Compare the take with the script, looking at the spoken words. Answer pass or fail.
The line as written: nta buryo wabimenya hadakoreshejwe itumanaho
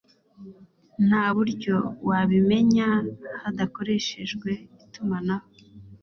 pass